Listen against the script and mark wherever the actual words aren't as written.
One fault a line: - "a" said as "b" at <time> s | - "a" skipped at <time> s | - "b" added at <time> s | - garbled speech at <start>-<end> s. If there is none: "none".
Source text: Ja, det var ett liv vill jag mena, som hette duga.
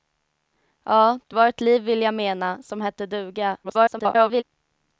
- garbled speech at 3.6-4.4 s